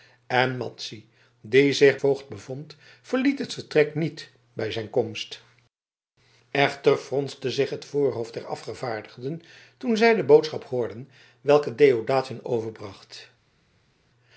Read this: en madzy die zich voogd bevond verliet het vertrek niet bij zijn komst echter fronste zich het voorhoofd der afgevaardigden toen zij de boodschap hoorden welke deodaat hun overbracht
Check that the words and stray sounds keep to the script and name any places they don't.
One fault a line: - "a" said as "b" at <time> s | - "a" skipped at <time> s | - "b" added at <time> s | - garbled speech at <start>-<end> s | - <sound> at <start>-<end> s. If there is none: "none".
none